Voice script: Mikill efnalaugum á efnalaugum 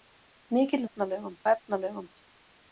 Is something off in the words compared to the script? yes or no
no